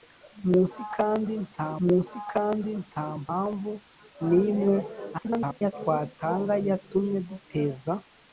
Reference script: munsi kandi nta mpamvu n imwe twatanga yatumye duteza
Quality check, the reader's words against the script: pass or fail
fail